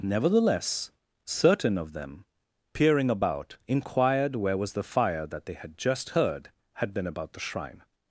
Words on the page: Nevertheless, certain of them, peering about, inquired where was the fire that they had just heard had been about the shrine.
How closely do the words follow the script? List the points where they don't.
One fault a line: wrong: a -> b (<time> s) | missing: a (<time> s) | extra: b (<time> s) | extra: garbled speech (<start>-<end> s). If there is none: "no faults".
no faults